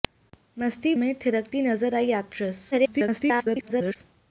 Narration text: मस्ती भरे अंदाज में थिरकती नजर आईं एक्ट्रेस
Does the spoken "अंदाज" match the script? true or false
false